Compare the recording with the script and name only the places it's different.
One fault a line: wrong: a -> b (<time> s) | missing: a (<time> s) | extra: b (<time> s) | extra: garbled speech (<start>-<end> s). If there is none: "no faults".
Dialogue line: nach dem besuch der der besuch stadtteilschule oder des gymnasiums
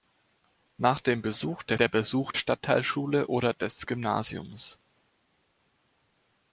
no faults